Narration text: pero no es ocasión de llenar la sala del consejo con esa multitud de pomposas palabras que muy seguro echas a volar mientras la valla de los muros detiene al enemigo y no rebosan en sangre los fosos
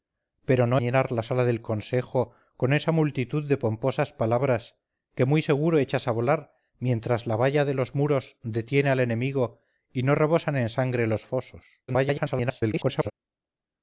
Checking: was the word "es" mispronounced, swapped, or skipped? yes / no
yes